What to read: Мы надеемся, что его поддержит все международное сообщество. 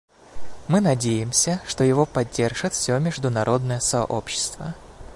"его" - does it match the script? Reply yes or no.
yes